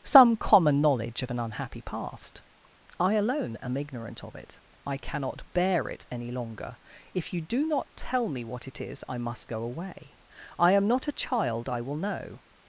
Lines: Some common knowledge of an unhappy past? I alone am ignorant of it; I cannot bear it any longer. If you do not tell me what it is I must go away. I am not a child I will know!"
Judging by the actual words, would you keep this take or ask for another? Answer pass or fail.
pass